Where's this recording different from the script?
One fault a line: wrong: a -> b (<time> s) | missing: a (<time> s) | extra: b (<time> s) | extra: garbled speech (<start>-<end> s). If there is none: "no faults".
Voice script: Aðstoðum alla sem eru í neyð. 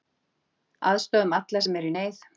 no faults